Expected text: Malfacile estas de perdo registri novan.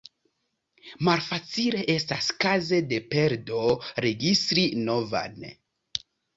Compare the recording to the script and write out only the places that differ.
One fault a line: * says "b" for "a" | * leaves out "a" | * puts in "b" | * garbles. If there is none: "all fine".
* puts in "kaze"